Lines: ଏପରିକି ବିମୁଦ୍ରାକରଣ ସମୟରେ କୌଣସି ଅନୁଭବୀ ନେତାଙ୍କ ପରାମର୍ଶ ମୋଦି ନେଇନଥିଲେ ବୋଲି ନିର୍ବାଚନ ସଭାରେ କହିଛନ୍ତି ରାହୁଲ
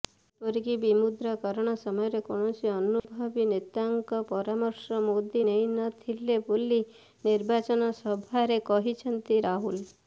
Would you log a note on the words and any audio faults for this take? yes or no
yes